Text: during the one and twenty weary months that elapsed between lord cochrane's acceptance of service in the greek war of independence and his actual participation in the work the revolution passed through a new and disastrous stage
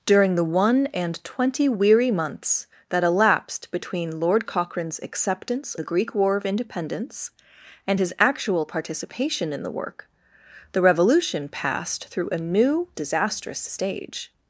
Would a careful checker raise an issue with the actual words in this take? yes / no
yes